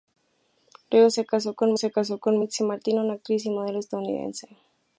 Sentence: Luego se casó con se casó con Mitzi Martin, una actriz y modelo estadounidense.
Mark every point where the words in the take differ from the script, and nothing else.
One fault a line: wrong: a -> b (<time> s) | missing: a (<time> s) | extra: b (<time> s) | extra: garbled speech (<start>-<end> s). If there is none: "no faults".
no faults